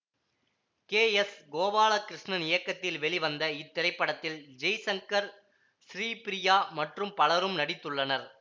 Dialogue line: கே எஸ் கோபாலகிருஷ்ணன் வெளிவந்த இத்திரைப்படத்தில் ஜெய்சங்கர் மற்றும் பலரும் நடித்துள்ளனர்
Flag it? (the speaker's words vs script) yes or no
yes